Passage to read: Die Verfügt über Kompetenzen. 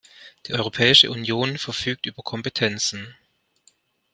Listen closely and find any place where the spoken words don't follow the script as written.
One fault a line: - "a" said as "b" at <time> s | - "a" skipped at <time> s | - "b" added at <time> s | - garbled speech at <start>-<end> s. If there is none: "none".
- "Europäische Union" added at 0.5 s